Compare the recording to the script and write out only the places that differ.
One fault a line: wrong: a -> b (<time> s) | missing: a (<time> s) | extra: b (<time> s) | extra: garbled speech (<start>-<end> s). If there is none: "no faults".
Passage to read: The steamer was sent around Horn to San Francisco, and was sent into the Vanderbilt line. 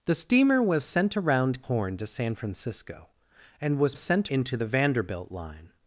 no faults